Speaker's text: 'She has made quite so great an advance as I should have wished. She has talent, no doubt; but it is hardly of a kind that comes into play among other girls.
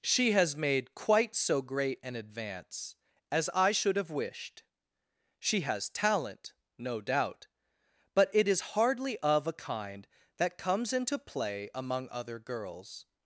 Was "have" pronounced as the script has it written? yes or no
yes